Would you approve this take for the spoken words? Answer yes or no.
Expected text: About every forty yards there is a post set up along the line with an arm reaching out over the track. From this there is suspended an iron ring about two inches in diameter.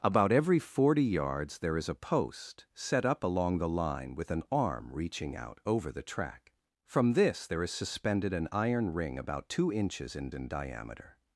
no